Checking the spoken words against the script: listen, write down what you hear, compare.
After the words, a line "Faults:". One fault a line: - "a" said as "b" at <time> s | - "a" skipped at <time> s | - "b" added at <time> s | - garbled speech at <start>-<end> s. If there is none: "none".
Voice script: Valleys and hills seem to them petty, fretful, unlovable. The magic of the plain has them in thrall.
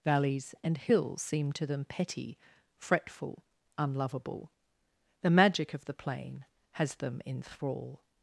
Valleys and hills seem to them petty, fretful, unlovable. The magic of the plain has them in thrall.
Faults:
none